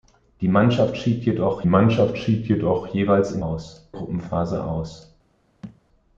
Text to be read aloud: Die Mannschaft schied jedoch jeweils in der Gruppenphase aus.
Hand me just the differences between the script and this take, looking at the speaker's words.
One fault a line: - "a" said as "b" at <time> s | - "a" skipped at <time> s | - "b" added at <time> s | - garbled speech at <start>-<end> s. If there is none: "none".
- "Mannschaft schied jedoch" added at 1.6 s
- "der" said as "aus" at 3.4 s